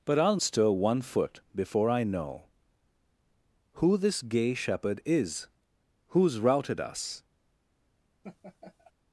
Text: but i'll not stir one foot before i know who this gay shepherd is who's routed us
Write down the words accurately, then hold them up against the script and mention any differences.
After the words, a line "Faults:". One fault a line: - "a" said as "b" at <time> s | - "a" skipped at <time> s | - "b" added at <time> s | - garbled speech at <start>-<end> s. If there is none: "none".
but i'll stir one foot before i know who this gay shepherd is who's routed us
Faults:
- "not" skipped at 0.4 s